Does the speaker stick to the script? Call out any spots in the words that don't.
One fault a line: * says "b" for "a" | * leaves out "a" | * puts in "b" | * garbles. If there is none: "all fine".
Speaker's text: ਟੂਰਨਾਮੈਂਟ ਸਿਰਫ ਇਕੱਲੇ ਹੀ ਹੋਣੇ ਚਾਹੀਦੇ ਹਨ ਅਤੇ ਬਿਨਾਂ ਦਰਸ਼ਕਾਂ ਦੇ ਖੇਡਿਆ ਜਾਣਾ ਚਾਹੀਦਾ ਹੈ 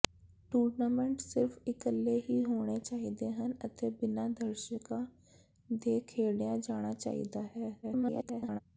* garbles